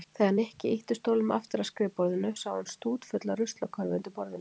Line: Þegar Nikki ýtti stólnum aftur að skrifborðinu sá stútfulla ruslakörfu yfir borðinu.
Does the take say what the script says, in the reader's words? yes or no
no